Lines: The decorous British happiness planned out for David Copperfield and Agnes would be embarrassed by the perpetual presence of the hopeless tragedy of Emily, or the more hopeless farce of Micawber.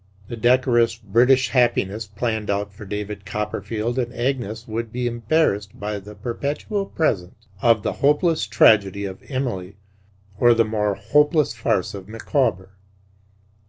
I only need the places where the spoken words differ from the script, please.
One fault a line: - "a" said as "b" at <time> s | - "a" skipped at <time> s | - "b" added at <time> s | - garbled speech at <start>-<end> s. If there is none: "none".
none